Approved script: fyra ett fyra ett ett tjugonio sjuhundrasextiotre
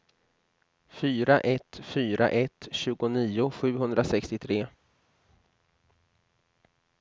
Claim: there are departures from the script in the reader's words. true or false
true